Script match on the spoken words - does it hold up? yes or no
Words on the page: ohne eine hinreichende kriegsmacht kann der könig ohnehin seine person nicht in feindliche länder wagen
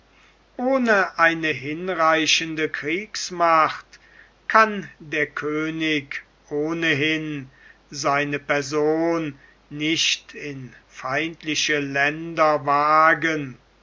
yes